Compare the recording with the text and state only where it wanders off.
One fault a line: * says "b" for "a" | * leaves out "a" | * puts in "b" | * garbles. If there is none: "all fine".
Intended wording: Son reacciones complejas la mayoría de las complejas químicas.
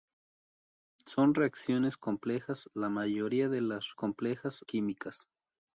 all fine